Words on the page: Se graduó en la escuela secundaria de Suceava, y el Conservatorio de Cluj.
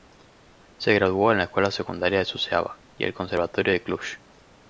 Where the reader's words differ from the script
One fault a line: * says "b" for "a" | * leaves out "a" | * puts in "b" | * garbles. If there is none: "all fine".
all fine